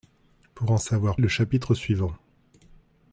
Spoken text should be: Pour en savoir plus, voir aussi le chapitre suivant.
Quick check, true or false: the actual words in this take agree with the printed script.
false